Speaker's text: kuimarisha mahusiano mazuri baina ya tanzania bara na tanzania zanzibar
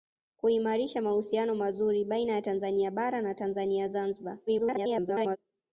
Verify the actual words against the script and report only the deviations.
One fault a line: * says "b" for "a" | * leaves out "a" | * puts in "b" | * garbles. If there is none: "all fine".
* garbles